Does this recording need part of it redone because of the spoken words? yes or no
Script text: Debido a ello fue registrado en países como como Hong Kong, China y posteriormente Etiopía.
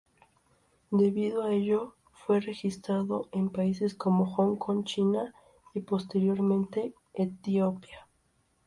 yes